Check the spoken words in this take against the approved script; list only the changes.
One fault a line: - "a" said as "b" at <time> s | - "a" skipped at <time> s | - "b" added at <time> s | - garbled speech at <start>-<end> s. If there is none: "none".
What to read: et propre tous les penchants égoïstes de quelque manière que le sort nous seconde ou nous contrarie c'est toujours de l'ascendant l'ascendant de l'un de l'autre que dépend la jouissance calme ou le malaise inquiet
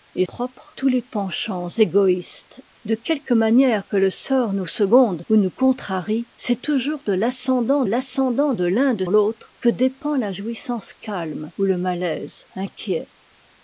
none